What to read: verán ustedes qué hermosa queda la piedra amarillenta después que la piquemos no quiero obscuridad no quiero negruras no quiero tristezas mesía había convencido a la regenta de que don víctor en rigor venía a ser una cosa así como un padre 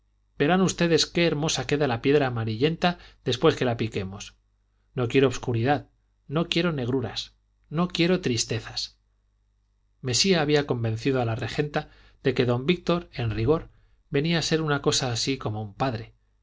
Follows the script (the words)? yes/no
yes